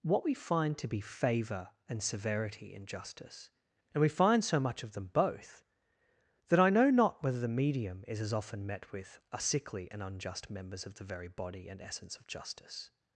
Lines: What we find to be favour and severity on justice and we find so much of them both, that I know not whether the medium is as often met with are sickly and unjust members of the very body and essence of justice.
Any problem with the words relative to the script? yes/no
yes